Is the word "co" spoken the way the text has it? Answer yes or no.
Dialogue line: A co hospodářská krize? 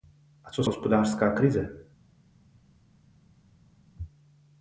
yes